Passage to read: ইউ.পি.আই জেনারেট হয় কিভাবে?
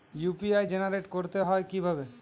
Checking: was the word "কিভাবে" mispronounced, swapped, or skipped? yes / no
no